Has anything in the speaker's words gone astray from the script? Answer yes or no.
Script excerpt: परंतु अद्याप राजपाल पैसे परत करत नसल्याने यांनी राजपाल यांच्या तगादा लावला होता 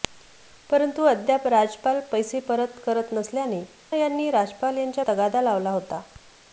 no